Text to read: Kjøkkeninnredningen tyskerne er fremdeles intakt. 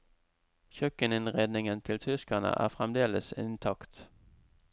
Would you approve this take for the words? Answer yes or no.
no